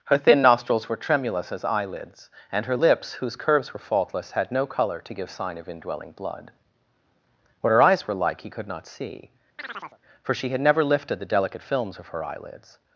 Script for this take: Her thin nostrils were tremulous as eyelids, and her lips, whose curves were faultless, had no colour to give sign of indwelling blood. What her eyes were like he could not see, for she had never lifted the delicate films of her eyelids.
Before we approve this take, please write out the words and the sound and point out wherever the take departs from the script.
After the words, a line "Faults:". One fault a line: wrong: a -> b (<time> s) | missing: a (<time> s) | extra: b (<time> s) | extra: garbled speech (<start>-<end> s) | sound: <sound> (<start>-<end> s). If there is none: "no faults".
Her thin nostrils were tremulous as eyelids, and her lips, whose curves were faultless, had no colour to give sign of indwelling blood. What her eyes were like he could not see, for she had never lifted the delicate films of her eyelids.
Faults:
sound: chirp (9.6-10.0 s)